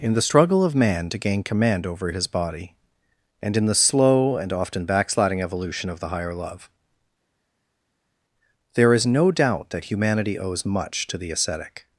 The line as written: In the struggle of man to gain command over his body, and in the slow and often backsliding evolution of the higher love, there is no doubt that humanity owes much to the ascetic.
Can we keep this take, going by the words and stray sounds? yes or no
yes